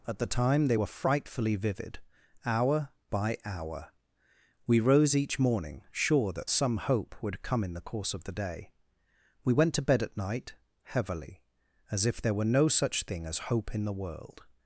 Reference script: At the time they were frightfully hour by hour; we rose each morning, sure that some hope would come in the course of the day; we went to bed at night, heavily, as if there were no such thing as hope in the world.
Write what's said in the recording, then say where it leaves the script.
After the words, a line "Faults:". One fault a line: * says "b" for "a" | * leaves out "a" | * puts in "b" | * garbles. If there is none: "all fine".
At the time they were frightfully vivid, hour by hour; we rose each morning, sure that some hope would come in the course of the day; we went to bed at night, heavily, as if there were no such thing as hope in the world.
Faults:
* puts in "vivid"